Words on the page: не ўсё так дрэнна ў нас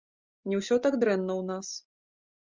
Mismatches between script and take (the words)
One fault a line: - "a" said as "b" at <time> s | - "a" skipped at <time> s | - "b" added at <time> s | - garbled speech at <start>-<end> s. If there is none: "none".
none